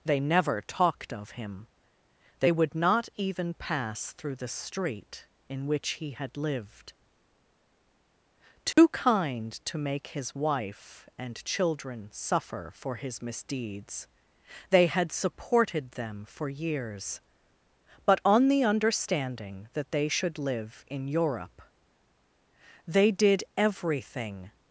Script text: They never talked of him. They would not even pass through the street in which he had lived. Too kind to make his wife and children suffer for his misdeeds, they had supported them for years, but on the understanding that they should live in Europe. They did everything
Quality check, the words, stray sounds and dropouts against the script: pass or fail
fail